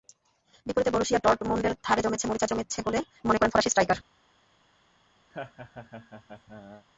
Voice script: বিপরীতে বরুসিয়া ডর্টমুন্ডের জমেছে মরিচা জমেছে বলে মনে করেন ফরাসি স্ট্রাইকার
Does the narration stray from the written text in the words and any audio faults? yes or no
yes